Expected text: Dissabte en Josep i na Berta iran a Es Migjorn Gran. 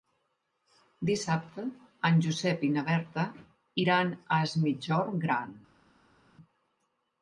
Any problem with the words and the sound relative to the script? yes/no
no